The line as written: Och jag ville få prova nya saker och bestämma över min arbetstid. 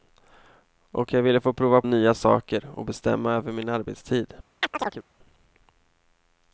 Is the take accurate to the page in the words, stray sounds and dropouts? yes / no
no